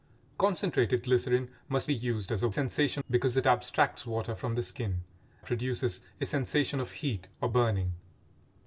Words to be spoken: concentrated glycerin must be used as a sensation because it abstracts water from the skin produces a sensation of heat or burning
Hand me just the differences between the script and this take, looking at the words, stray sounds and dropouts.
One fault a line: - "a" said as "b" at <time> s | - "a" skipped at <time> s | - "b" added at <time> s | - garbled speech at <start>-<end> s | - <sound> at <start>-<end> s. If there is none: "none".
none